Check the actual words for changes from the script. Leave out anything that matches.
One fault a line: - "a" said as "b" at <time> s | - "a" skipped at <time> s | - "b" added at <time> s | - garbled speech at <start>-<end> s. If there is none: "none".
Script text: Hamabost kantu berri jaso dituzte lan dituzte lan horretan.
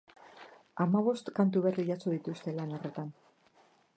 - "dituzte lan" skipped at 2.7 s